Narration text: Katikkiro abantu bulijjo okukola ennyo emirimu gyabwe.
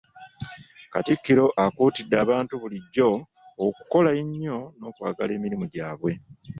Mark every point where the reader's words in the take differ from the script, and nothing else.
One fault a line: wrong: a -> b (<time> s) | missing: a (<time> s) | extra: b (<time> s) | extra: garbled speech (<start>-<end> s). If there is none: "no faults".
extra: akuutidde (1.6 s)
extra: n'okwagala (4.8 s)